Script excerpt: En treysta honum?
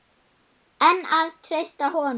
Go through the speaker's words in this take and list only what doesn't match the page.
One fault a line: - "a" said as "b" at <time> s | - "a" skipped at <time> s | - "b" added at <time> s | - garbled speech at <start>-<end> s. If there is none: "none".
- "að" added at 1.2 s